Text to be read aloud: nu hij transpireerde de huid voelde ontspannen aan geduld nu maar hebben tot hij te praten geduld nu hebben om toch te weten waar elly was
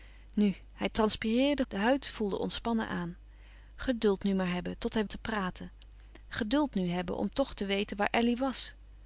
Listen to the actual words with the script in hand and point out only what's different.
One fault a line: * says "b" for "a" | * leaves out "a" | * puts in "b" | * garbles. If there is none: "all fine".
all fine